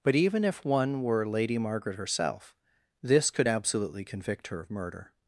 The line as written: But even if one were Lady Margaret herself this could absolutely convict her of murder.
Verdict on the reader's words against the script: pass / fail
pass